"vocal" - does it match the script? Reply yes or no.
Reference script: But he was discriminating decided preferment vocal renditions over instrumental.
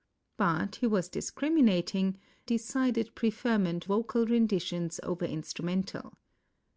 yes